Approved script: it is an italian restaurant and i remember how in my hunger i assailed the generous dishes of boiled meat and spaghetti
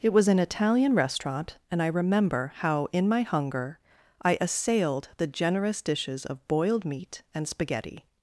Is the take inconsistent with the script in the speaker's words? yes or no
yes